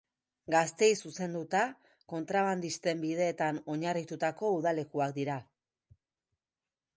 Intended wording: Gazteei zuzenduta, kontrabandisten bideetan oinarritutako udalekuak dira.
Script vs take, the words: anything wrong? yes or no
no